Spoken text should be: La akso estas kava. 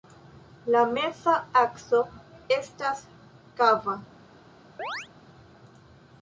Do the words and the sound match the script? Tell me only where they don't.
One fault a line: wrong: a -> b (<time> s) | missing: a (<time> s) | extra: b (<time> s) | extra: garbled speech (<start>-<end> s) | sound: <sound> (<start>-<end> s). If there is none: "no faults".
extra: meza (0.9 s)
sound: chirp (4.8-5.1 s)